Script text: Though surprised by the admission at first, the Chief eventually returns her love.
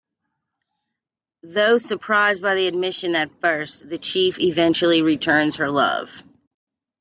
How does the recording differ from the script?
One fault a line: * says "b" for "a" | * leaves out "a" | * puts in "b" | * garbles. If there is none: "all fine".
all fine